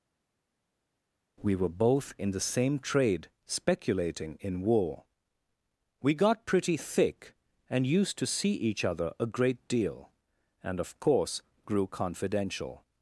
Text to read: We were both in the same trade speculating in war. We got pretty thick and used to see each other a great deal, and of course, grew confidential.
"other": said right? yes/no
yes